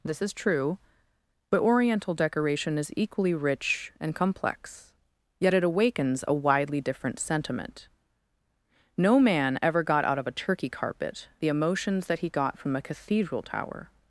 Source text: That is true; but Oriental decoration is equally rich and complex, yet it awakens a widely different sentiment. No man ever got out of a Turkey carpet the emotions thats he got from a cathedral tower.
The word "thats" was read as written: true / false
false